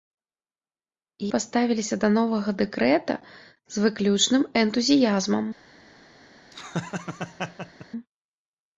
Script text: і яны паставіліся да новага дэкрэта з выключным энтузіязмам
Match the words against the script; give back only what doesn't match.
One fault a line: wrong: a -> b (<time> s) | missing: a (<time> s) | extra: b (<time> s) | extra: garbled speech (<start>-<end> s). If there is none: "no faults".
missing: яны (1.3 s)